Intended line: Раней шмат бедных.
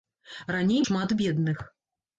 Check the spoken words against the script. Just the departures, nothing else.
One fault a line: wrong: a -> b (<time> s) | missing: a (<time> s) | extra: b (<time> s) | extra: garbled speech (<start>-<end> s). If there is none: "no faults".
no faults